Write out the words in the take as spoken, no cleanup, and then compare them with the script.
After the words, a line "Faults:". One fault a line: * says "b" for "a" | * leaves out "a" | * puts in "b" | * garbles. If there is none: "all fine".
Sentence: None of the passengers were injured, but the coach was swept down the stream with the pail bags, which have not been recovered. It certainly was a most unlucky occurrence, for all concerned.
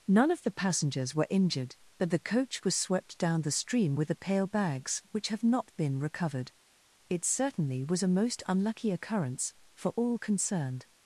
None of the passengers were injured, but the coach was swept down the stream with the pail bags, which have not been recovered. It certainly was a most unlucky occurrence, for all concerned.
Faults:
all fine